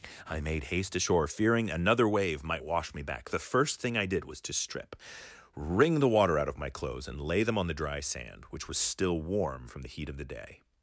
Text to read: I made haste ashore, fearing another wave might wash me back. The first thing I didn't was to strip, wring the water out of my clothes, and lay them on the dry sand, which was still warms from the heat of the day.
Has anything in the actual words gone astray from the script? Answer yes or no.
yes